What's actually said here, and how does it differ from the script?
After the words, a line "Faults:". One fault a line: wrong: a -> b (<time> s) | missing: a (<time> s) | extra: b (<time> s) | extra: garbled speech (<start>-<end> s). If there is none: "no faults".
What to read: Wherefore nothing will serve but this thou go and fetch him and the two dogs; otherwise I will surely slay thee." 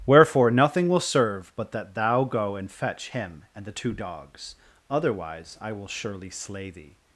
Wherefore nothing will serve but that thou go and fetch him and the two dogs; otherwise I will surely slay thee."
Faults:
wrong: this -> that (1.7 s)